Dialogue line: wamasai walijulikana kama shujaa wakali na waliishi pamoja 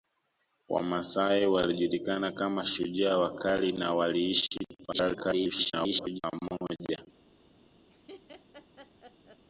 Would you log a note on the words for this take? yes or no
yes